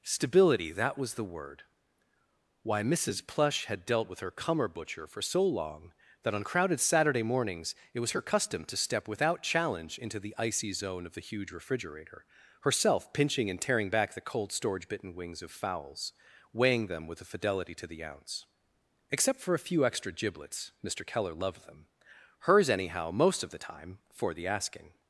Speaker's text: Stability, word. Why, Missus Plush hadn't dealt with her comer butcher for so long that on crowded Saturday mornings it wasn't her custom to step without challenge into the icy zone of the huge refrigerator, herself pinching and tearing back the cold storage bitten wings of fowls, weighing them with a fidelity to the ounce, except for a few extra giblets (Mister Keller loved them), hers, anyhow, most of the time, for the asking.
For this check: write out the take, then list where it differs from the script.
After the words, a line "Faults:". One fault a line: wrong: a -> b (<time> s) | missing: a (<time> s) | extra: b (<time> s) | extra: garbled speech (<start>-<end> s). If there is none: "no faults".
Stability, that was the word. Why, Missus Plush had dealt with her comer butcher for so long that on crowded Saturday mornings it was her custom to step without challenge into the icy zone of the huge refrigerator, herself pinching and tearing back the cold storage bitten wings of fowls, weighing them with a fidelity to the ounce, except for a few extra giblets (Mister Keller loved them), hers, anyhow, most of the time, for the asking.
Faults:
extra: that was the (0.7 s)
wrong: hadn't -> had (3.6 s)
wrong: wasn't -> was (8.0 s)